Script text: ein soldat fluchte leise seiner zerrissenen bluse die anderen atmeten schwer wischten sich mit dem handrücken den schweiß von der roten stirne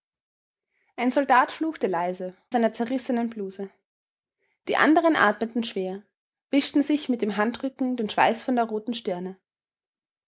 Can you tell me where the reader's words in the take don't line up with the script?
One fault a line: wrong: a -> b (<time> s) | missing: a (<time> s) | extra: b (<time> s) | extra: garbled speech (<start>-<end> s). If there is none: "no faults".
no faults